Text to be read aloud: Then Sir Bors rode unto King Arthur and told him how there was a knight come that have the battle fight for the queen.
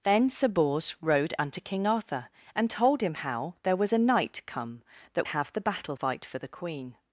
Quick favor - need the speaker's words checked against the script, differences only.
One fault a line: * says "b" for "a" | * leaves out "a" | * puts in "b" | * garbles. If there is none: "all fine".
all fine